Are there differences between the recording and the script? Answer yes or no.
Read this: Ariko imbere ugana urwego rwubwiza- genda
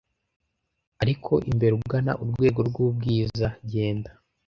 no